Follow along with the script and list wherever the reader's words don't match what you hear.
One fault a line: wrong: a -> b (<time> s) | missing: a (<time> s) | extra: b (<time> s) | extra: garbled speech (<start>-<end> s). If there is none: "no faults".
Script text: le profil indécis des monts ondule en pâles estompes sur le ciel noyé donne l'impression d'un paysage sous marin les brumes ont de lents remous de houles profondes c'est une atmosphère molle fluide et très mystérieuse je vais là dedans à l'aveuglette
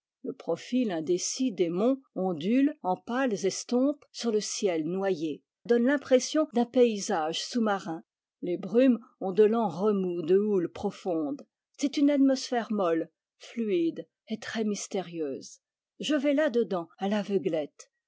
no faults